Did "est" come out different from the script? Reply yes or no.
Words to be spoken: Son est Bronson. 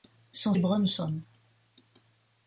no